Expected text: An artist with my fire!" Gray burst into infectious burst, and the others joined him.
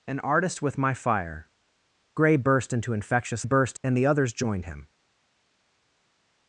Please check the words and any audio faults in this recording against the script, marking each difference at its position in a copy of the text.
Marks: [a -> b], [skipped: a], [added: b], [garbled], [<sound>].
An artist with my fire!" Gray burst into infectious burst, and the others joined him.